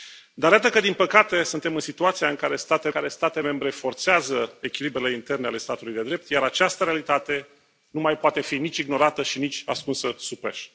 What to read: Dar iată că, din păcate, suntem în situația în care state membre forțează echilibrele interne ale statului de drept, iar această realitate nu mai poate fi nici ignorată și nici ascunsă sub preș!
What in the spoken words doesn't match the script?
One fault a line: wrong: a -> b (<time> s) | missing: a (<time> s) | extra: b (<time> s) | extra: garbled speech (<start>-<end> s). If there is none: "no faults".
extra: care state (2.9 s)